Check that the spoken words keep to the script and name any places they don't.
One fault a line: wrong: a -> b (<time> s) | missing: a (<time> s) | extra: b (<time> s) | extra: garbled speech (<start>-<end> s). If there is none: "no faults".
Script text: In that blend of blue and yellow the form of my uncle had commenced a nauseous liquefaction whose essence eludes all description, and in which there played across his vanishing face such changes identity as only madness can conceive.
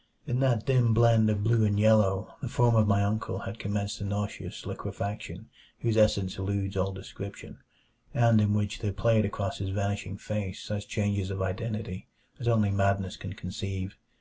extra: dim (0.7 s)
extra: of (11.3 s)